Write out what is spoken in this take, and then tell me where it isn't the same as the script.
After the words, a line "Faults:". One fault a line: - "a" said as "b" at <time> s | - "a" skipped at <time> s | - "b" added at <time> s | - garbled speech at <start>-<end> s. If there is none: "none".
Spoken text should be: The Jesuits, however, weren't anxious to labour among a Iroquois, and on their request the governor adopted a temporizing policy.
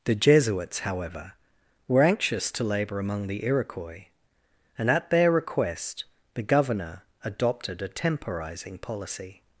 The Jesuits, however, were anxious to labour among the Iroquois, and at their request the governor adopted a temporizing policy.
Faults:
- "weren't" said as "were" at 1.9 s
- "a" said as "the" at 3.3 s
- "on" said as "at" at 4.9 s